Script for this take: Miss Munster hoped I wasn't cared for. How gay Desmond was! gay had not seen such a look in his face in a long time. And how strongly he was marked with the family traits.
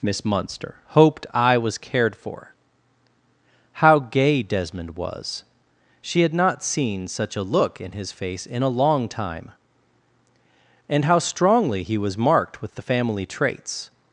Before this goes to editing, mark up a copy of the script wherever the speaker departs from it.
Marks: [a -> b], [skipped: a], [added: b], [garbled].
Miss Munster hoped I [wasn't -> was] cared for. How gay Desmond was! [gay -> she] had not seen such a look in his face in a long time. And how strongly he was marked with the family traits.